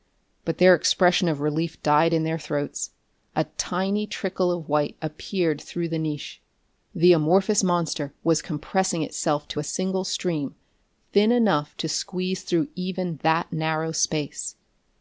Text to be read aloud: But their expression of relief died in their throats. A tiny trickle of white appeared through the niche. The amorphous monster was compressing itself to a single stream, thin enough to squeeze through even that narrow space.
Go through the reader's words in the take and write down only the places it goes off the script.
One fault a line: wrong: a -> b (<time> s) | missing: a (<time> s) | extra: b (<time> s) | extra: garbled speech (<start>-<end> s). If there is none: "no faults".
no faults